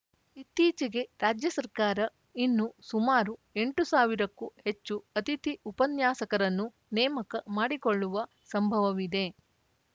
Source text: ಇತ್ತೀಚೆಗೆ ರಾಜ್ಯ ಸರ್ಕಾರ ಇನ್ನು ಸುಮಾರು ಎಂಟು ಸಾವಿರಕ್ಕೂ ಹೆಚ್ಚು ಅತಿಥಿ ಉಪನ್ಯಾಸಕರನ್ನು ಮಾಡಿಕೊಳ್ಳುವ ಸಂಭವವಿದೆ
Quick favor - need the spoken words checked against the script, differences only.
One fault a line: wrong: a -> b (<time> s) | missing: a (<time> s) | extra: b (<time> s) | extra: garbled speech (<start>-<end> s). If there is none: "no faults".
extra: ನೇಮಕ (6.9 s)